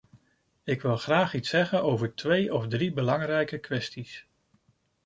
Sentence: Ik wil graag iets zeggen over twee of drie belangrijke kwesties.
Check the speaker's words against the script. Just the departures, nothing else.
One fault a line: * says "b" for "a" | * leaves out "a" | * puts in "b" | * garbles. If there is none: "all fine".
all fine